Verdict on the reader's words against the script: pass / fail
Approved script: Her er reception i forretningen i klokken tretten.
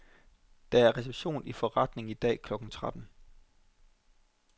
fail